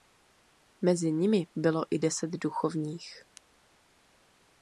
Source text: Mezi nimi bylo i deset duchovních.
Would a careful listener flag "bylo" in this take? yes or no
no